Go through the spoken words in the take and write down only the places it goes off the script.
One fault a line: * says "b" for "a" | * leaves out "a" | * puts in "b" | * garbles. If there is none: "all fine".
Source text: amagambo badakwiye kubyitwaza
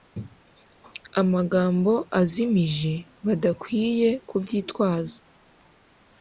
* puts in "azimije"